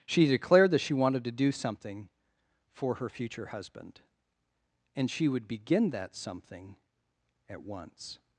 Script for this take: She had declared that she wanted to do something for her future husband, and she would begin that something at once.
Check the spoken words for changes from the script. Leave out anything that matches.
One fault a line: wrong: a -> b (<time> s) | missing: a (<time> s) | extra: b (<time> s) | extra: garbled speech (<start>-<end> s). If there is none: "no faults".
missing: had (0.3 s)